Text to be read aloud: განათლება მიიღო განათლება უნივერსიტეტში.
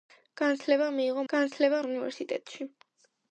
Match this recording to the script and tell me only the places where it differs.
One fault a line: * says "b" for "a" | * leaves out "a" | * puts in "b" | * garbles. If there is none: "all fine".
all fine